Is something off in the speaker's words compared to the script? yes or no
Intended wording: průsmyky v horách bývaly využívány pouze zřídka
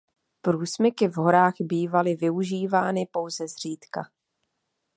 no